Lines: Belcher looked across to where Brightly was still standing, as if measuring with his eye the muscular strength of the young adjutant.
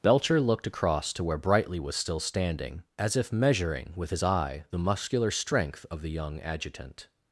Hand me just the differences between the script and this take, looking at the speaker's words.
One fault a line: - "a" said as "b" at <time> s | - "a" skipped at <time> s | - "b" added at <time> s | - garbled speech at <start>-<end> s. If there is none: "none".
none